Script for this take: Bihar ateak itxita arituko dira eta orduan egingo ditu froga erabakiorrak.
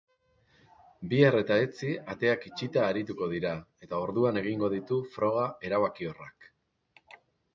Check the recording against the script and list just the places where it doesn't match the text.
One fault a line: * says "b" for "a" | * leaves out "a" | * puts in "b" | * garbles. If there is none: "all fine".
* puts in "eta etzi"